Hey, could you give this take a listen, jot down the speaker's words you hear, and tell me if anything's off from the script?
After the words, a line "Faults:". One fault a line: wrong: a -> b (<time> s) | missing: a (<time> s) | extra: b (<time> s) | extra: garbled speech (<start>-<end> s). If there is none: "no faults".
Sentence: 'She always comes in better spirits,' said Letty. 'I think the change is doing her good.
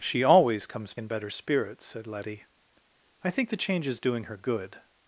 'She always comes in better spirits,' said Letty. 'I think the change is doing her good.
Faults:
no faults